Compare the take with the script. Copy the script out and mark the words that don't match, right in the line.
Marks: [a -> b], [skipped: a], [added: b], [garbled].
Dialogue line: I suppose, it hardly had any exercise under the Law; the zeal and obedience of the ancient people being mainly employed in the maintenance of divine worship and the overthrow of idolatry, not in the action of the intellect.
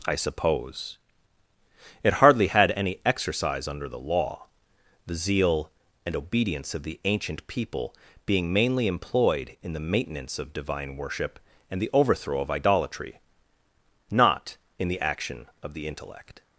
I suppose, it hardly had any exercise under the Law; the zeal and obedience of the ancient people being mainly employed in the maintenance of divine worship and the overthrow of idolatry, not in the action of the intellect.